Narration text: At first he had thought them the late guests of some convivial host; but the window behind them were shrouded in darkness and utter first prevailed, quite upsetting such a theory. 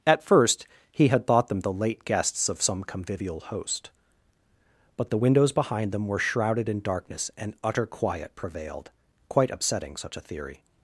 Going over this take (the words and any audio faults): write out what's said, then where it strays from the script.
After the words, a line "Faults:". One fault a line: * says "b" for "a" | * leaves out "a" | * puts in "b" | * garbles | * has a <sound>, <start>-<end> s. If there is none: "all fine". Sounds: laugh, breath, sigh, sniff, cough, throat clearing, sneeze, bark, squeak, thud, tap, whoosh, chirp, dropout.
At first he had thought them the late guests of some convivial host; but the windows behind them were shrouded in darkness and utter quiet prevailed, quite upsetting such a theory.
Faults:
* says "windows" for "window"
* says "quiet" for "first"